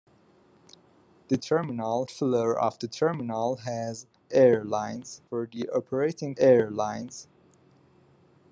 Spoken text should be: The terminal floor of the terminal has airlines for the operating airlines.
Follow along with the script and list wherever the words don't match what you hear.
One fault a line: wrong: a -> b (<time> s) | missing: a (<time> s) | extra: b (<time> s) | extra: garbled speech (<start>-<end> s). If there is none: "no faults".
no faults